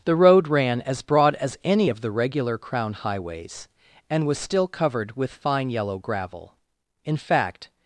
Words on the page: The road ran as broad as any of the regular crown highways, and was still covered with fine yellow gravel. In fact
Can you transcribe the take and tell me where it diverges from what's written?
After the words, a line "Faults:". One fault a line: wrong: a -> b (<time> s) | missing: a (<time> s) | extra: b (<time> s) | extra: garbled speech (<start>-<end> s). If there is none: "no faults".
The road ran as broad as any of the regular crown highways, and was still covered with fine yellow gravel. In fact
Faults:
no faults